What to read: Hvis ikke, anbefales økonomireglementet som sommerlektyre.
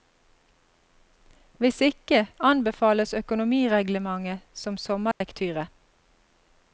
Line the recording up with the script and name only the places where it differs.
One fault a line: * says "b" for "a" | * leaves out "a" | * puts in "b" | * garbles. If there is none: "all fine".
all fine